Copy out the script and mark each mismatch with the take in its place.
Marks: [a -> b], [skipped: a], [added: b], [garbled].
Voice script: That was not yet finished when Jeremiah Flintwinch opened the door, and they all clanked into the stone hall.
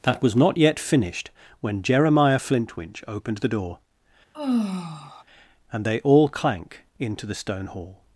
That was not yet finished when Jeremiah Flintwinch opened the door, and they all [clanked -> clank] into the stone hall.